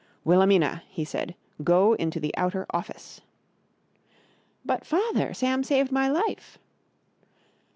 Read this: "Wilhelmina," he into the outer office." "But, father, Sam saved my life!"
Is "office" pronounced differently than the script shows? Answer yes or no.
no